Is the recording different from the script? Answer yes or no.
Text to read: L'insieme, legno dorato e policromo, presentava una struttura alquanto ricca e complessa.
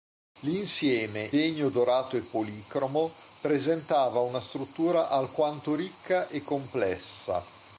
no